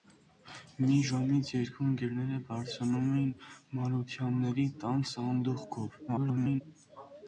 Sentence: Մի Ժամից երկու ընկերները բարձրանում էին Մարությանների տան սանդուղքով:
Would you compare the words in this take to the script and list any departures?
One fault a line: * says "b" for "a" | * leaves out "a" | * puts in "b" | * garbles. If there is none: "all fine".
* garbles